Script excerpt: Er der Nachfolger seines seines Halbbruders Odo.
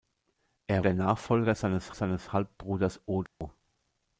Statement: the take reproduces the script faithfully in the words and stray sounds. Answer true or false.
false